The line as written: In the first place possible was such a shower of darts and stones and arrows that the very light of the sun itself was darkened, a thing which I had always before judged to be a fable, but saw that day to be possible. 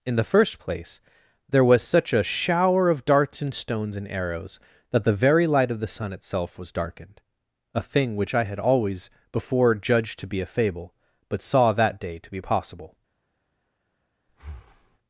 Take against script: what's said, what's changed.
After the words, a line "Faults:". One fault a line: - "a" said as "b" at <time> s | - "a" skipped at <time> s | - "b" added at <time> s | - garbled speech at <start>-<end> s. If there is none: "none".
In the first place there was such a shower of darts and stones and arrows that the very light of the sun itself was darkened, a thing which I had always before judged to be a fable, but saw that day to be possible.
Faults:
- "possible" said as "there" at 1.5 s